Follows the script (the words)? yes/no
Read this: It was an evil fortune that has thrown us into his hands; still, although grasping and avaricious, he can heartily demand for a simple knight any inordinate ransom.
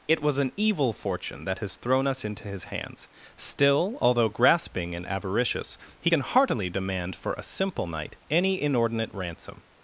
yes